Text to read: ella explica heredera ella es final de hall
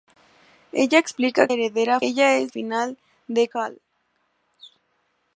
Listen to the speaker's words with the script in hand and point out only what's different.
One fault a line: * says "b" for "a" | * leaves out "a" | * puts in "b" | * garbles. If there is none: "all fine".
all fine